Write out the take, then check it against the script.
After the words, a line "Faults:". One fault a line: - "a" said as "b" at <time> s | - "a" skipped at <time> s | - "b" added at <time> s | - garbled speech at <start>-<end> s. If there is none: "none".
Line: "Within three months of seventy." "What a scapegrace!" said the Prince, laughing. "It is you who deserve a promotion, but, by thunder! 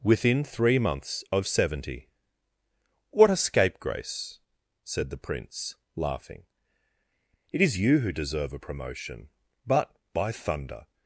"Within three months of seventy." "What a scapegrace!" said the Prince, laughing. "It is you who deserve a promotion, but, by thunder!
Faults:
none